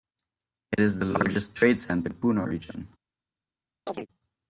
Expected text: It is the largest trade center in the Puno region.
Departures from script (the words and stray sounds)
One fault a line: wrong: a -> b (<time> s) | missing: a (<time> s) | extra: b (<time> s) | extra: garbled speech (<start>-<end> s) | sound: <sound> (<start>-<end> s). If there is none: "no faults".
missing: in (2.1 s)
sound: chirp (3.9-4.1 s)